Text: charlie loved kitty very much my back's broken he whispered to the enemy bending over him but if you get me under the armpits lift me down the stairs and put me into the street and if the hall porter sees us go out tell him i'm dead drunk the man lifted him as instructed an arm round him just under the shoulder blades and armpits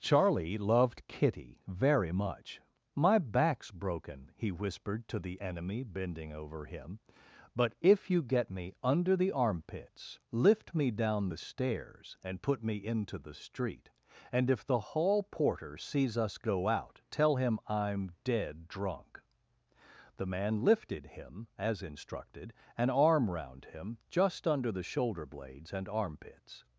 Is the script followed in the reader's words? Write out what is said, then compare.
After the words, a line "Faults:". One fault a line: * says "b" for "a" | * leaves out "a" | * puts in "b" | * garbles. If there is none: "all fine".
charlie loved kitty very much my back's broken he whispered to the enemy bending over him but if you get me under the armpits lift me down the stairs and put me into the street and if the hall porter sees us go out tell him i'm dead drunk the man lifted him as instructed an arm round him just under the shoulder blades and armpits
Faults:
all fine